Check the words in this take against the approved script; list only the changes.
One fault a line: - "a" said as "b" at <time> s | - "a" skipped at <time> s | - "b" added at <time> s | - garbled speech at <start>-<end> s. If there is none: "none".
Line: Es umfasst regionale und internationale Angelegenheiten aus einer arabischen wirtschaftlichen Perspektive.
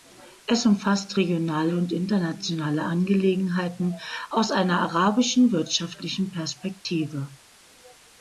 none